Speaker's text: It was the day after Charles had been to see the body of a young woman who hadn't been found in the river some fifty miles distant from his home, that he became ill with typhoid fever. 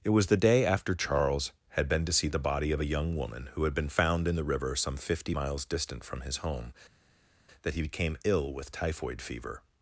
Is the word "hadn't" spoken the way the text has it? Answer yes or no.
no